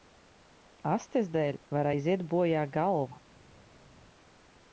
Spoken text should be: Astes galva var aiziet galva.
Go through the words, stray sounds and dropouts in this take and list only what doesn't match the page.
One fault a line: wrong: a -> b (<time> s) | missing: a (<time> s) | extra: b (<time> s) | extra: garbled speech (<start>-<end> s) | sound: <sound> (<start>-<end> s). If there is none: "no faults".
wrong: galva -> dēļ (1.3 s)
extra: bojā (2.3 s)